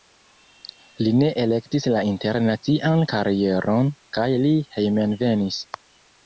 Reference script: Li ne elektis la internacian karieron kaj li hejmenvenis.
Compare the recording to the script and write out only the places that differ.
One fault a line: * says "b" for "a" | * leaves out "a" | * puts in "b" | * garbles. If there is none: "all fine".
all fine